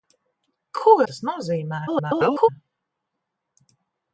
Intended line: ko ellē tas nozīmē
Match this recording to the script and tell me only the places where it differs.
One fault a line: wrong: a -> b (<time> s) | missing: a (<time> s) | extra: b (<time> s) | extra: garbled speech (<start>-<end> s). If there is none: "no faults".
missing: ellē (0.9 s)
extra: garbled speech (1.9-2.5 s)